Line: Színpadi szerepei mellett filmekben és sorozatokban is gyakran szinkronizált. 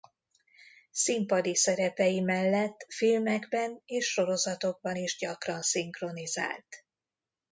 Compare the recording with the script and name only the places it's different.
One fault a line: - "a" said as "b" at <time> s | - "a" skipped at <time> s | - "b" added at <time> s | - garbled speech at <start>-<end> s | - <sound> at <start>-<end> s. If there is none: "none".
none